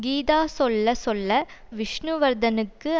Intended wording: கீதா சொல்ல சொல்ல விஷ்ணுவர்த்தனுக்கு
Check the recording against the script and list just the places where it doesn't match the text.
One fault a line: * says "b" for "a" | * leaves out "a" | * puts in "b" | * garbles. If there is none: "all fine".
all fine